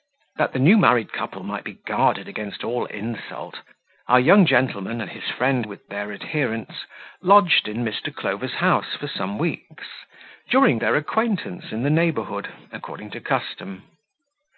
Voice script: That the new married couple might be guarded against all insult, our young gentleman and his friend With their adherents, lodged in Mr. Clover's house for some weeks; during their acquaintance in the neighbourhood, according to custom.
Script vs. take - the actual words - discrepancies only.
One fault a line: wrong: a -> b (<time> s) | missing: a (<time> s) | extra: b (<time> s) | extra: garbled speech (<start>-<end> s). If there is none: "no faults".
no faults